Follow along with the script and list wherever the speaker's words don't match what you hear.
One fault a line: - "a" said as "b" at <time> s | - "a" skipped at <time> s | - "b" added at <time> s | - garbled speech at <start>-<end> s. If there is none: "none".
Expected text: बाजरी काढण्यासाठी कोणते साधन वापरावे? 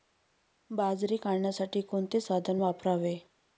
none